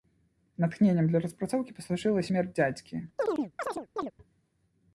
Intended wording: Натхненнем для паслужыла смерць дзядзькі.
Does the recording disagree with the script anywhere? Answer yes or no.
yes